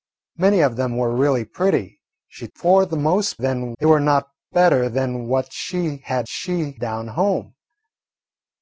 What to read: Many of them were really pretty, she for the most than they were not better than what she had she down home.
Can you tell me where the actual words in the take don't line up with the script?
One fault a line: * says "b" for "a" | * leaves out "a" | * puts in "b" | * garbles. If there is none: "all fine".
all fine